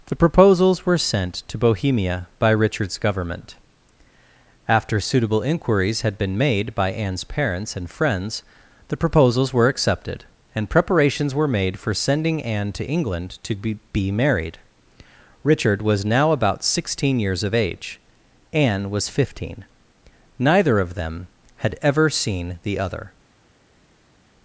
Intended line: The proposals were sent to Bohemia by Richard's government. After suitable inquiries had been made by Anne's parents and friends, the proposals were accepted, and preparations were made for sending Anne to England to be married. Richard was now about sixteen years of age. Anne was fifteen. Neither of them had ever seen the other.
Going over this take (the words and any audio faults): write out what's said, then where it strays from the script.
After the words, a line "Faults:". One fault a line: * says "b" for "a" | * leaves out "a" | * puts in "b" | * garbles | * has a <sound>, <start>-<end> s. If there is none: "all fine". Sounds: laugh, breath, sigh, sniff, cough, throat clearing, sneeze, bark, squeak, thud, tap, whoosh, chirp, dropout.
The proposals were sent to Bohemia by Richard's government. After suitable inquiries had been made by Anne's parents and friends, the proposals were accepted, and preparations were made for sending Anne to England to be be married. Richard was now about sixteen years of age. Anne was fifteen. Neither of them had ever seen the other.
Faults:
* puts in "be"